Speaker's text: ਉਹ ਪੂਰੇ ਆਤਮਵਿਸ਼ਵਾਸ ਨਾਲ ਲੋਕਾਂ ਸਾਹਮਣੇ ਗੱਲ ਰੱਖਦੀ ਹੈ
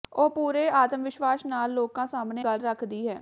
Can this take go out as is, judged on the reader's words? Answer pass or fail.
pass